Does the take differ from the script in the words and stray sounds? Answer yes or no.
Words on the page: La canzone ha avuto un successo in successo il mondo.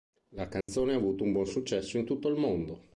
yes